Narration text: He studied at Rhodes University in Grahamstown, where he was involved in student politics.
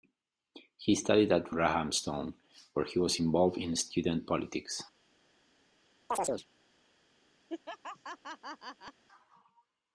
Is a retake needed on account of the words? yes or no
yes